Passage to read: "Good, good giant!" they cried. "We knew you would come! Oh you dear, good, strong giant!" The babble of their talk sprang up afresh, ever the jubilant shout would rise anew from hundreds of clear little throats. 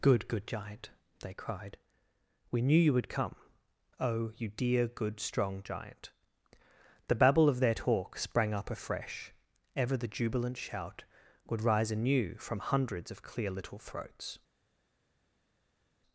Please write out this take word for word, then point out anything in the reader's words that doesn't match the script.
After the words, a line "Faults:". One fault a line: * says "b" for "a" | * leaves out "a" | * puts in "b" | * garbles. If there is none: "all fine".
"Good, good giant!" they cried. "We knew you would come! Oh you dear, good, strong giant!" The babble of their talk sprang up afresh, ever the jubilant shout would rise anew from hundreds of clear little throats.
Faults:
all fine